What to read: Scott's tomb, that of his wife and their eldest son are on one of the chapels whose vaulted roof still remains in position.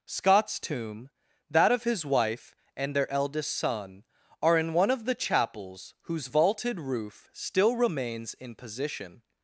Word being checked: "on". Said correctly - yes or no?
no